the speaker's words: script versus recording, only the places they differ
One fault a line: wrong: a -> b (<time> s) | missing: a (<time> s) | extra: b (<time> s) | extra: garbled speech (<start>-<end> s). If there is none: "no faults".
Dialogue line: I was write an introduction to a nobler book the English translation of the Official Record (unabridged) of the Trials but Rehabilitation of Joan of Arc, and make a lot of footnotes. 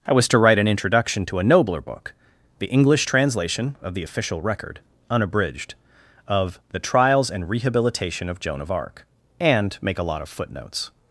extra: to (0.3 s)
wrong: but -> and (7.3 s)